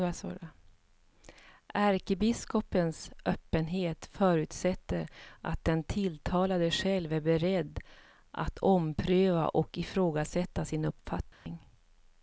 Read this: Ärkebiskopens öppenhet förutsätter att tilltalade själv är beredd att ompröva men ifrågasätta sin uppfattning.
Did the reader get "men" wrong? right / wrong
wrong